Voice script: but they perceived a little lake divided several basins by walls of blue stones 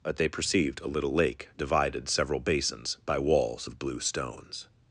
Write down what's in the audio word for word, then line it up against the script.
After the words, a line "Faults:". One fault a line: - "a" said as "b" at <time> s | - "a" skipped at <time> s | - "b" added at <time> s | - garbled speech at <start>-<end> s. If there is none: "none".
but they perceived a little lake divided several basins by walls of blue stones
Faults:
none